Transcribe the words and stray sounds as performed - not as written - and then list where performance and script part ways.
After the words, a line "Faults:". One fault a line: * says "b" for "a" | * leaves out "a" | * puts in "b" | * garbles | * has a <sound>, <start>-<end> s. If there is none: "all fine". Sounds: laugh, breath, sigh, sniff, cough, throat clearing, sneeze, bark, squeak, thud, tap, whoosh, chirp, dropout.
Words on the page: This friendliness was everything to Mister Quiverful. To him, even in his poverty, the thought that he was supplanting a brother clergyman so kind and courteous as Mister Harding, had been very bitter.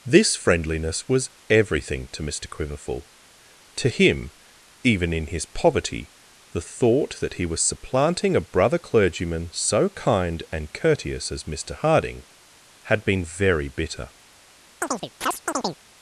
This friendliness was everything to Mister Quiverful. To him, even in his poverty, the thought that he was supplanting a brother clergyman so kind and courteous as Mister Harding, had been very bitter.
Faults:
* has a chirp, 14.8-15.8 s